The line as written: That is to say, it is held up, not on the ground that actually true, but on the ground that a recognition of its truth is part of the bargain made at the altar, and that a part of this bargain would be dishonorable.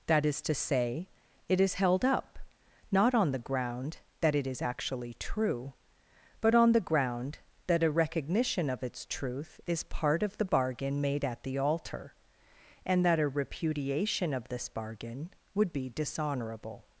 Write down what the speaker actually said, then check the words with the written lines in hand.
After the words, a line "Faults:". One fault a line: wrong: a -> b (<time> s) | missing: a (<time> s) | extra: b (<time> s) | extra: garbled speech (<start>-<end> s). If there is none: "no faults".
That is to say, it is held up, not on the ground that it is actually true, but on the ground that a recognition of its truth is part of the bargain made at the altar, and that a repudiation of this bargain would be dishonorable.
Faults:
extra: it is (4.3 s)
wrong: part -> repudiation (13.3 s)